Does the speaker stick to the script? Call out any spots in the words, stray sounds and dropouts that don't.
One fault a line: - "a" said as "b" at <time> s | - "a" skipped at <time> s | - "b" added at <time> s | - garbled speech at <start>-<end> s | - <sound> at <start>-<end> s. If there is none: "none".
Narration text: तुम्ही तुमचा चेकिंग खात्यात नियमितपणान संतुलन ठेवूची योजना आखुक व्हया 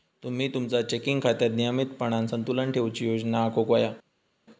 none